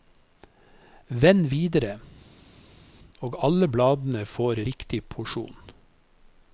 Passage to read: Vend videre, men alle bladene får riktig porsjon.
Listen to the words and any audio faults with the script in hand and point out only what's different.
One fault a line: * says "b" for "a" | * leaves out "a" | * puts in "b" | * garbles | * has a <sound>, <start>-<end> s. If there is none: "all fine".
* says "og" for "men"